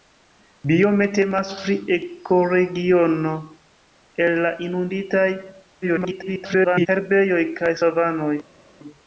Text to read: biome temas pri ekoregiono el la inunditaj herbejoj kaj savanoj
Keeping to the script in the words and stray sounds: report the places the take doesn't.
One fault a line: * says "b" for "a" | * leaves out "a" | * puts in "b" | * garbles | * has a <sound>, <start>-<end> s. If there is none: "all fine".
* garbles